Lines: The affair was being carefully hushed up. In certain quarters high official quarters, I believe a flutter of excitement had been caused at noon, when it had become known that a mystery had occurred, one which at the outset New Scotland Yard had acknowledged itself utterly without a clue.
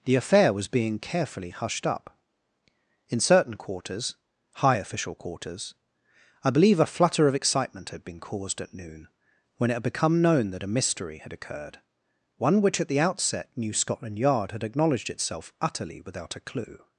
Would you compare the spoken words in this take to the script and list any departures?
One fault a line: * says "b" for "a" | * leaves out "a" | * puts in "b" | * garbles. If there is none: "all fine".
all fine